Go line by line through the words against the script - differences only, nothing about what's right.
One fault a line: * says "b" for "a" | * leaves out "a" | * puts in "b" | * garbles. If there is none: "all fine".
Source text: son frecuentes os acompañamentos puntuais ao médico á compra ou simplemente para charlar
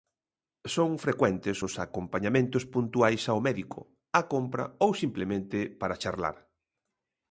all fine